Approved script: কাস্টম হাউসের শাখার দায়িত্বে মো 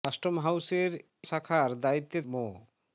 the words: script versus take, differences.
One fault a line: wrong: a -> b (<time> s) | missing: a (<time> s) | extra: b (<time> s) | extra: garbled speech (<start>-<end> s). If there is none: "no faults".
no faults